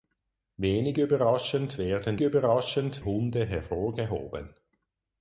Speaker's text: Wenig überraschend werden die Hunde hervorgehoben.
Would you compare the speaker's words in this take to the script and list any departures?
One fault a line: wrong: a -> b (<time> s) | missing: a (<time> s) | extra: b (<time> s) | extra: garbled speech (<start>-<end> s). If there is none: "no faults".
wrong: die -> überraschend (2.2 s)